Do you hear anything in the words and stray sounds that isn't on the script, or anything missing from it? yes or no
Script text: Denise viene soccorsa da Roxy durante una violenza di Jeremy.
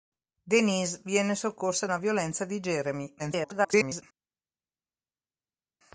yes